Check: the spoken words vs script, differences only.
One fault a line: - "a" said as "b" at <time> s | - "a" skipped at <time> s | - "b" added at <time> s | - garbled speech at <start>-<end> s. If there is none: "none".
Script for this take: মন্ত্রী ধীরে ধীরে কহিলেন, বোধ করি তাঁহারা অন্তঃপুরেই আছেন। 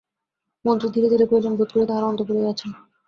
none